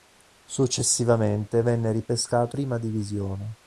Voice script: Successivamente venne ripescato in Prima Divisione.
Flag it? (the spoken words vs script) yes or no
yes